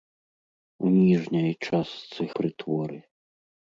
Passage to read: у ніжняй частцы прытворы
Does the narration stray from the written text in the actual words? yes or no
no